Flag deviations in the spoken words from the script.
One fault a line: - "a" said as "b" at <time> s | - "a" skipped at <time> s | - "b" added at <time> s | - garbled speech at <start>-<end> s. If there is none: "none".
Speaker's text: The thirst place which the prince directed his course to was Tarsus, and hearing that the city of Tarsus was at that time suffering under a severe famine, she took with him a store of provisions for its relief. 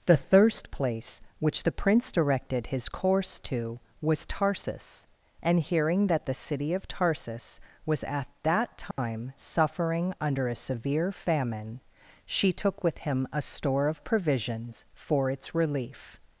none